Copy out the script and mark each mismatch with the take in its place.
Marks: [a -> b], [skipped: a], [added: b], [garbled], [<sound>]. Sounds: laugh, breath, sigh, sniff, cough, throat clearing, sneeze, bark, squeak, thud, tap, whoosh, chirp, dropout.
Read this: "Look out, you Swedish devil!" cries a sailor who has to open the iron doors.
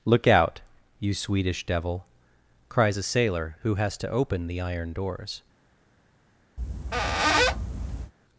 "Look out, you Swedish devil!" cries a sailor who has to open the iron doors. [squeak]